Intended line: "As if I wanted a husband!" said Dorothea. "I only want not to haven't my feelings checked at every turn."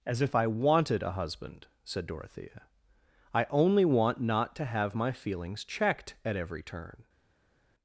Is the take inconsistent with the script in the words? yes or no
yes